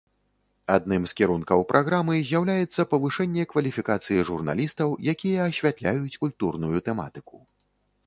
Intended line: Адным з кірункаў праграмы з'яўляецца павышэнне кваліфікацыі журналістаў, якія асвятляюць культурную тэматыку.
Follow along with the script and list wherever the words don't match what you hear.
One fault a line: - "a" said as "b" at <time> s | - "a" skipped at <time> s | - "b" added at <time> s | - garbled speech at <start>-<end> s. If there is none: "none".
none